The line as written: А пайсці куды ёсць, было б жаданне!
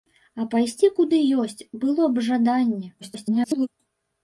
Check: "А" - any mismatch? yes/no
no